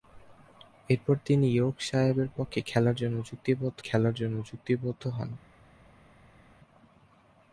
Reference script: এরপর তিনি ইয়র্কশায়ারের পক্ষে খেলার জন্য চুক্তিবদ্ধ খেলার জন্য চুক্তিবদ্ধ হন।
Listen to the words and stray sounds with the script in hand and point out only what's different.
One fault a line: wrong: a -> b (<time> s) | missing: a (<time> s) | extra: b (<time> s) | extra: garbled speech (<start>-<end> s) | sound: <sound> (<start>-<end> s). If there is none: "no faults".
no faults